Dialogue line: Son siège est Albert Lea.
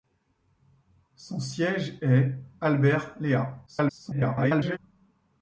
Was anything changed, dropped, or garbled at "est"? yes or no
no